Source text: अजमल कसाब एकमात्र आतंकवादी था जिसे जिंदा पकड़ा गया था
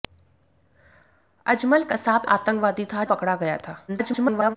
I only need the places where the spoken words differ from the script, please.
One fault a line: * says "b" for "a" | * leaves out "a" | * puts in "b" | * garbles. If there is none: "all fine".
* leaves out "एकमात्र"
* leaves out "जिसे जिंदा"
* garbles